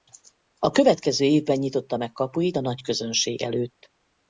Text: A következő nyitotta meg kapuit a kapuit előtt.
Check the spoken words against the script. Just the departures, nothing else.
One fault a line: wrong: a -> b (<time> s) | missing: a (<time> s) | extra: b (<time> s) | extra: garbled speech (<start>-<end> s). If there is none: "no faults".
extra: évben (1.2 s)
wrong: kapuit -> nagyközönség (2.6 s)